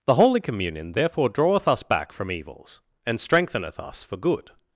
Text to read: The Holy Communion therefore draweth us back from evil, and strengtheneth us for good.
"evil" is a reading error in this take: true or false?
true